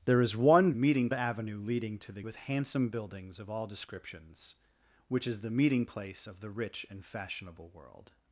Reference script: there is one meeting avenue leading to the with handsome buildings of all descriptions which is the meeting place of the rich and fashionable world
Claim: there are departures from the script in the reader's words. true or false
false